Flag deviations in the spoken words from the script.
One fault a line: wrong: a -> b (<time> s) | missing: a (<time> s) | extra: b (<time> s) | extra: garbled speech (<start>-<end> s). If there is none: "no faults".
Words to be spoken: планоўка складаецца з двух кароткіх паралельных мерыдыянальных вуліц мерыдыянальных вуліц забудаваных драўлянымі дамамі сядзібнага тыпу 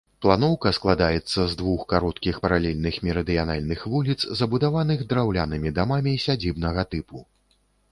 missing: мерыдыянальных вуліц (4.2 s)